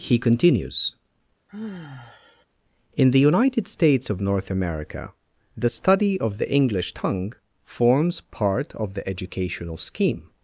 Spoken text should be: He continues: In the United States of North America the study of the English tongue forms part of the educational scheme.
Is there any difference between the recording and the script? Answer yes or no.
no